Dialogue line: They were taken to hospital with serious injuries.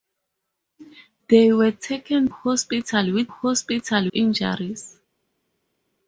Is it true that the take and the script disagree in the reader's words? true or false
true